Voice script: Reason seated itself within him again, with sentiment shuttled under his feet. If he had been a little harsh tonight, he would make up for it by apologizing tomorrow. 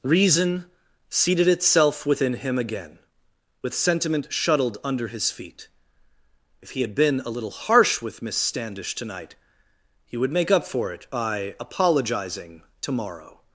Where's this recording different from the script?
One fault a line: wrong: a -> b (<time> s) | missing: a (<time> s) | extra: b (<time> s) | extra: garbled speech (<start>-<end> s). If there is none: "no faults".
extra: with Miss Standish (8.0 s)